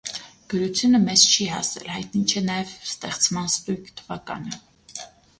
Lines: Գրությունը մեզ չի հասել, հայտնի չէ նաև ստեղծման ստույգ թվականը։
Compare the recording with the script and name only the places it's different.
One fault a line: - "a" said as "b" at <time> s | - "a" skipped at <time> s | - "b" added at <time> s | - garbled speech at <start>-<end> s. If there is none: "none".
none